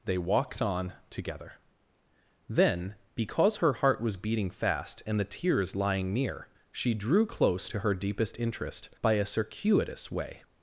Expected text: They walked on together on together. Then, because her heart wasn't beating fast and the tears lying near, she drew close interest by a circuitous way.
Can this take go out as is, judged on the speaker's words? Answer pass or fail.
fail